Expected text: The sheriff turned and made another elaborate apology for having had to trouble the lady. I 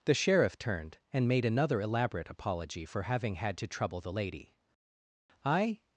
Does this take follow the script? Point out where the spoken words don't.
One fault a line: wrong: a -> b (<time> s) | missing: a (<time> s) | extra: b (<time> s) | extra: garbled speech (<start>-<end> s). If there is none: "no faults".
no faults